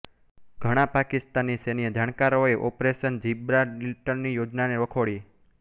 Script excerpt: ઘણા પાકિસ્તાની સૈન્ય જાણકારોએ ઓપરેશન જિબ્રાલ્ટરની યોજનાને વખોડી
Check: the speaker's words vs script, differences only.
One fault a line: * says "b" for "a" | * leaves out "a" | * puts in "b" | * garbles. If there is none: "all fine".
all fine